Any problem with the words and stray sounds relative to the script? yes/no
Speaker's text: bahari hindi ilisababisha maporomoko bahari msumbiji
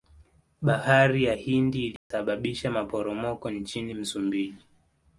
yes